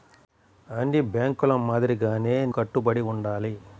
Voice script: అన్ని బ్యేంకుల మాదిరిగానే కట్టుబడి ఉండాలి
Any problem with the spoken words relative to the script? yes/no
no